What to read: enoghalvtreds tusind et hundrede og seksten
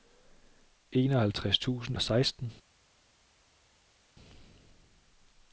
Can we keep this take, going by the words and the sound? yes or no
no